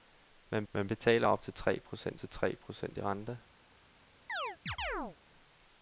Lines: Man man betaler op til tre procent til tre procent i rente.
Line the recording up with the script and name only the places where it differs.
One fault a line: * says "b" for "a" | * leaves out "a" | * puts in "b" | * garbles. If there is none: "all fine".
all fine